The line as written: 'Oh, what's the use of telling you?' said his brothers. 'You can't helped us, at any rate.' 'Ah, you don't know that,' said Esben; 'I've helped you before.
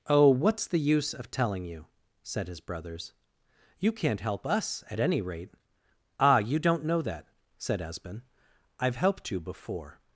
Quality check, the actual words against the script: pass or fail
fail